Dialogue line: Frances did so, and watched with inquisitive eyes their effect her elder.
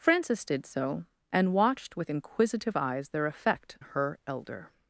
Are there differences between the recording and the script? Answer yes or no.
no